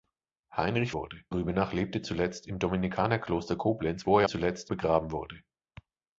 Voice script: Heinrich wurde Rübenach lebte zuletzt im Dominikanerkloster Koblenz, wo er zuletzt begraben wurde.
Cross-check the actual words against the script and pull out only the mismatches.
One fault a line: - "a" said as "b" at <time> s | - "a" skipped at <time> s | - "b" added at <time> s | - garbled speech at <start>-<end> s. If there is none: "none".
none